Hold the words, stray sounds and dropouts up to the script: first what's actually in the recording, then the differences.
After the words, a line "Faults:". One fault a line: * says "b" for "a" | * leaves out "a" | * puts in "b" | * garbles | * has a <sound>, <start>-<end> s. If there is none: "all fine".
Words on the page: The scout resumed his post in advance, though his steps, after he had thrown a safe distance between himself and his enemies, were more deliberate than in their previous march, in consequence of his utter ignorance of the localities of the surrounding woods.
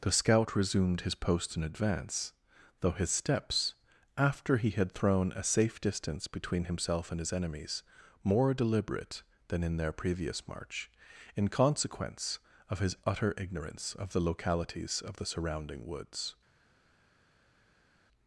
The scout resumed his post in advance, though his steps, after he had thrown a safe distance between himself and his enemies, more deliberate than in their previous march, in consequence of his utter ignorance of the localities of the surrounding woods.
Faults:
* leaves out "were"